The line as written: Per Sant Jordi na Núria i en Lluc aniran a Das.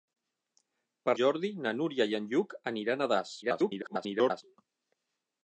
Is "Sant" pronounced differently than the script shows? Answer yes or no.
yes